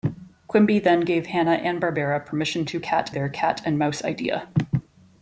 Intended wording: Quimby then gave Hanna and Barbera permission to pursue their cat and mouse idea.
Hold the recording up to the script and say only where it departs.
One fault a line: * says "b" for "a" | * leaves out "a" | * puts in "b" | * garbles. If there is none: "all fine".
* says "cat" for "pursue"